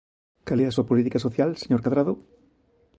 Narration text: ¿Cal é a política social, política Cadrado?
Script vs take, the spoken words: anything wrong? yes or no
yes